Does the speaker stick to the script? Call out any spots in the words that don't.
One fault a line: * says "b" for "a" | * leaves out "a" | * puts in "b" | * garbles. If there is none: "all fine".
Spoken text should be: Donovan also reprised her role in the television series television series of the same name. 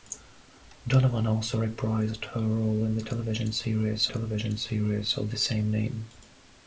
all fine